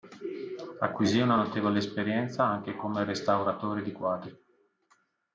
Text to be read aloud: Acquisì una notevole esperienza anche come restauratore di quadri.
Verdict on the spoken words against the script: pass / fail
pass